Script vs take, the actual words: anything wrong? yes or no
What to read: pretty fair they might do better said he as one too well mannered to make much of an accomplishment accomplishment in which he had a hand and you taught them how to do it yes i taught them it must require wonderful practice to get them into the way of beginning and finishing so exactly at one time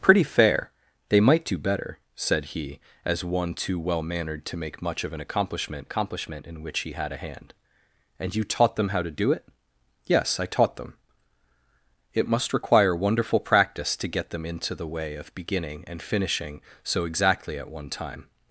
no